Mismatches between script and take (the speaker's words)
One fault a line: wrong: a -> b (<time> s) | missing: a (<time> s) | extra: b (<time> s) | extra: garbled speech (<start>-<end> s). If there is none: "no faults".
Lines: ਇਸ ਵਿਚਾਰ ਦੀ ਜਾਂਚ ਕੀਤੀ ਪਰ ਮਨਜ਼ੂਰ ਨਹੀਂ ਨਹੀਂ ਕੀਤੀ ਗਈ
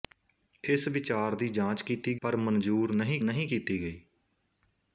no faults